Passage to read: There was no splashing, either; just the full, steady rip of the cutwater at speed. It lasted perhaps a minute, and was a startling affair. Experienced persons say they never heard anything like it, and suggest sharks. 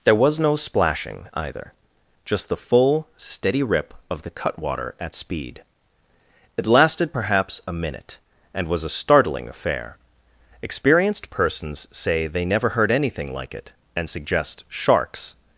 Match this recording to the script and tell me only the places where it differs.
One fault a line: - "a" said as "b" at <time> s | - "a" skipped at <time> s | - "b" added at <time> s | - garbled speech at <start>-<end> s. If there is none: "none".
none